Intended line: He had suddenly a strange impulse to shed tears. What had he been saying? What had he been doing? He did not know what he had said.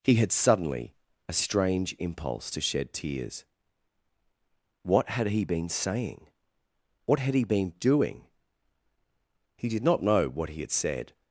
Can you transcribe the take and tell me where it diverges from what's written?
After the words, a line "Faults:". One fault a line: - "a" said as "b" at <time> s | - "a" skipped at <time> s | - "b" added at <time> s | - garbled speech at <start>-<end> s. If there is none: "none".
He had suddenly a strange impulse to shed tears. What had he been saying? What had he been doing? He did not know what he had said.
Faults:
none